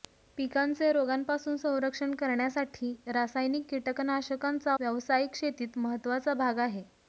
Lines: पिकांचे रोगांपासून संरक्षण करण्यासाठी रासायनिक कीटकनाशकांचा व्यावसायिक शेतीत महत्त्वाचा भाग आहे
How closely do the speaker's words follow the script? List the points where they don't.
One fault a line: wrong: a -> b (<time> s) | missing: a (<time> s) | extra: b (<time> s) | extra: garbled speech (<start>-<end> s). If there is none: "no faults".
no faults